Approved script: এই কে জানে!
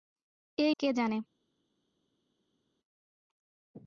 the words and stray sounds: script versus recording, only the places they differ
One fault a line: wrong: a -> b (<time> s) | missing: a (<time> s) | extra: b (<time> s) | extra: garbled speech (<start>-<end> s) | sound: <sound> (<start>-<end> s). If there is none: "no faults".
no faults